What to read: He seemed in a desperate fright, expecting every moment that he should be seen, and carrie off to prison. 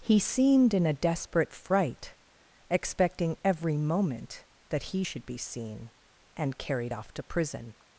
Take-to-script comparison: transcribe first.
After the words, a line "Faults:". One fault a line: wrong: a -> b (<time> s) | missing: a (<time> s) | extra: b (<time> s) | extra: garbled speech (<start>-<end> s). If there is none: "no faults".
He seemed in a desperate fright, expecting every moment that he should be seen, and carried off to prison.
Faults:
wrong: carrie -> carried (6.6 s)